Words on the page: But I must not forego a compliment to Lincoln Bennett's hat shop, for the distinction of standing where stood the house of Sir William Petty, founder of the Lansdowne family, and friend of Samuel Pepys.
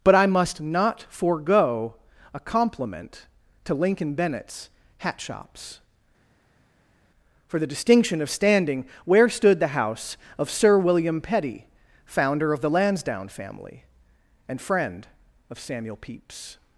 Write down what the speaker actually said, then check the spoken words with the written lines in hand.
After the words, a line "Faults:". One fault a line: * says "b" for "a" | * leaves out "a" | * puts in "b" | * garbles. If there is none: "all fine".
But I must not forego a compliment to Lincoln Bennett's hat shops, for the distinction of standing where stood the house of Sir William Petty, founder of the Lansdowne family, and friend of Samuel Pepys.
Faults:
* says "shops" for "shop"